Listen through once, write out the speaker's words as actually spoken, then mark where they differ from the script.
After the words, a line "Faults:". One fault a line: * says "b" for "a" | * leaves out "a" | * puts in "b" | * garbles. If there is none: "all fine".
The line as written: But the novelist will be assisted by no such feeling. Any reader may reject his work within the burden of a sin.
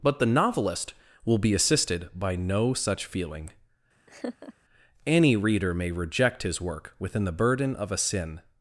But the novelist will be assisted by no such feeling. Any reader may reject his work within the burden of a sin.
Faults:
all fine